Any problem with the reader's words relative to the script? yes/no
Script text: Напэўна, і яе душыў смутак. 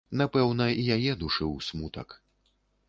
no